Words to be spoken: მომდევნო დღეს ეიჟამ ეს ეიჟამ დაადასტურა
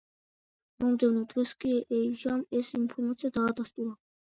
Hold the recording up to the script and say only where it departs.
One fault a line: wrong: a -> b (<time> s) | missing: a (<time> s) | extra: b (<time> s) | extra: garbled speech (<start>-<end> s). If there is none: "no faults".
extra: კი (1.6 s)
wrong: ეიჟამ -> ინფორმაცია (2.8 s)